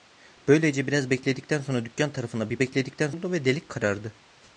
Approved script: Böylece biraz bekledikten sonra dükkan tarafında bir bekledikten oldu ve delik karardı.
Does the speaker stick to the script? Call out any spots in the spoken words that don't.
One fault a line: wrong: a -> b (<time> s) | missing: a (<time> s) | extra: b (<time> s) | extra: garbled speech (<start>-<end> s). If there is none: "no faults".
no faults